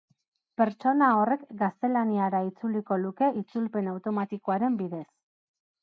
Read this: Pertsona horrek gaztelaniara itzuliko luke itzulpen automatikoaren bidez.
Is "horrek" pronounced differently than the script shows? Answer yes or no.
no